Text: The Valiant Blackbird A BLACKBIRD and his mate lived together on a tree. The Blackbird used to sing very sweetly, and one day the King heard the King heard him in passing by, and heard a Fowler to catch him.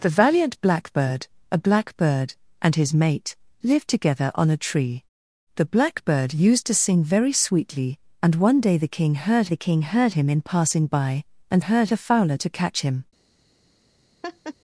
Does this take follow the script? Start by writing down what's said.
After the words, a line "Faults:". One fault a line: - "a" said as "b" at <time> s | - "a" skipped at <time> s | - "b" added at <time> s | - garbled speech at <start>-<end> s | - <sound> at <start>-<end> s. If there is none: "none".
The Valiant Blackbird A BLACKBIRD and his mate lived together on a tree. The Blackbird used to sing very sweetly, and one day the King heard the King heard him in passing by, and heard a Fowler to catch him.
Faults:
- laugh at 14.2-14.5 s